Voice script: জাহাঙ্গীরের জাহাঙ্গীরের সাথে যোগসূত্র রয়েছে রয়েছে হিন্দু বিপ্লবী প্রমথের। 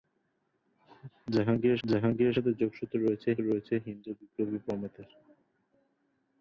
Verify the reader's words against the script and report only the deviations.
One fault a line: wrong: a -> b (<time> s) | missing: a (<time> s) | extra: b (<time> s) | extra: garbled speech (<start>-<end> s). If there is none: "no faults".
no faults